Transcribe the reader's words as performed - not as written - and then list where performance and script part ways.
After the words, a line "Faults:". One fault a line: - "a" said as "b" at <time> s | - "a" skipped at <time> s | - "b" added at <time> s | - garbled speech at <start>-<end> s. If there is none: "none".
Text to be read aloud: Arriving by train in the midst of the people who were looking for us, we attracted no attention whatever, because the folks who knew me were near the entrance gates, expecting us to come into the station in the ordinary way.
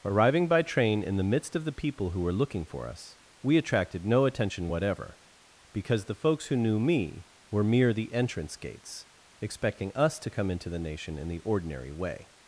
Arriving by train in the midst of the people who were looking for us, we attracted no attention whatever, because the folks who knew me were mere the entrance gates, expecting us to come into the nation in the ordinary way.
Faults:
- "near" said as "mere" at 7.6 s
- "station" said as "nation" at 10.8 s